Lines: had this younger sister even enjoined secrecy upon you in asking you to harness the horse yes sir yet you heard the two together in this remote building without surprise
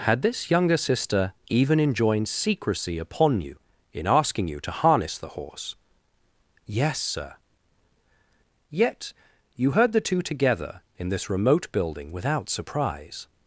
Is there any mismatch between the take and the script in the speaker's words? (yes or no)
no